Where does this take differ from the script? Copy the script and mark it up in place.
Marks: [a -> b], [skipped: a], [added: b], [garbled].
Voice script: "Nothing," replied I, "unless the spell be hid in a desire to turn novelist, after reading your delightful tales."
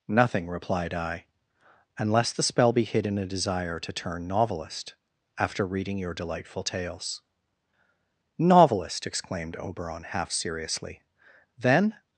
"Nothing," replied I, "unless the spell be hid in a desire to turn novelist, after reading your delightful tales." [added: Novelist exclaimed Oberon half seriously Then]